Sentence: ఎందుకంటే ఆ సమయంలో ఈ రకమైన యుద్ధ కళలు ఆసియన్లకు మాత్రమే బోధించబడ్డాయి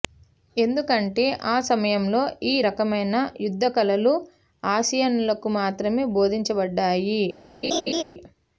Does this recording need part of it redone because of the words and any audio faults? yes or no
yes